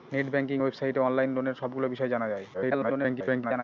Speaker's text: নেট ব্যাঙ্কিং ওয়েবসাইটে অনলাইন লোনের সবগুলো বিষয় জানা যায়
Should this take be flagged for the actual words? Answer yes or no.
yes